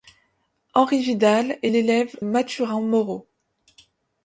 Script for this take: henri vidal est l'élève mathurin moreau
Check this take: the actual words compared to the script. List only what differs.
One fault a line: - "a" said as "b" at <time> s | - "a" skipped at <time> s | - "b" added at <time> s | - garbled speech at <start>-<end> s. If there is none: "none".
none